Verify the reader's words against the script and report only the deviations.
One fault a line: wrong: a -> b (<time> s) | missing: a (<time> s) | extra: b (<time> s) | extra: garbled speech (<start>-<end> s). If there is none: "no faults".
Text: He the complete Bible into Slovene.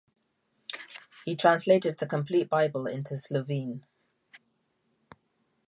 extra: translated (1.4 s)